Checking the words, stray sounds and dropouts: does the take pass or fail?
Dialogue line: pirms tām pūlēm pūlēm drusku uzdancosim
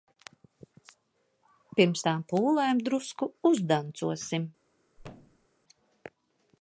fail